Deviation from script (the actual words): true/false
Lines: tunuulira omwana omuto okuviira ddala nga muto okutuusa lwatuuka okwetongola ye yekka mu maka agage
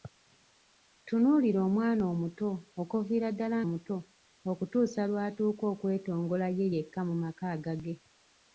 true